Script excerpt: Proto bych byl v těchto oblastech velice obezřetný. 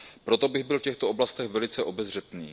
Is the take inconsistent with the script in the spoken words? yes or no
no